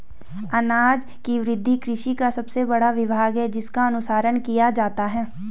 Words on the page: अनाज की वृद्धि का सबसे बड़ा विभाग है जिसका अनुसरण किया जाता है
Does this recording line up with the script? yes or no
no